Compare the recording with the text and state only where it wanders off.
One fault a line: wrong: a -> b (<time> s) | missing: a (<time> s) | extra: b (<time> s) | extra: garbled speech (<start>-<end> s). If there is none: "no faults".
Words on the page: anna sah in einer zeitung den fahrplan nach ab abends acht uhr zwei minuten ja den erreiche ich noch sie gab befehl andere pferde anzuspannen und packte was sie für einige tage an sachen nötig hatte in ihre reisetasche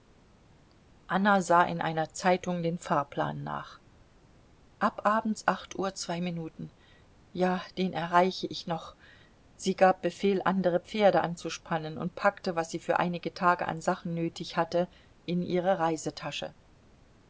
no faults